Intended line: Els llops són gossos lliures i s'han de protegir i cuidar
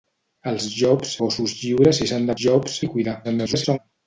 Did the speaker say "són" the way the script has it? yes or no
no